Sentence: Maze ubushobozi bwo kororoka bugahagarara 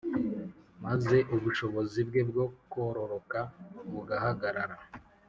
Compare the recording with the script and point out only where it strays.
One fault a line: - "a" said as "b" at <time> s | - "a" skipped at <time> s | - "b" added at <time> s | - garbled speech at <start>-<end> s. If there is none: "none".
- "bwe" added at 2.1 s